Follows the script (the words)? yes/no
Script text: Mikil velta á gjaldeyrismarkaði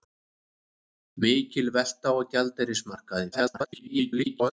no